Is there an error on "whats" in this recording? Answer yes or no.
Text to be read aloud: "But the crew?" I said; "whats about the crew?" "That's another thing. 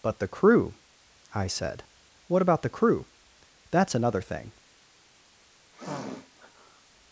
yes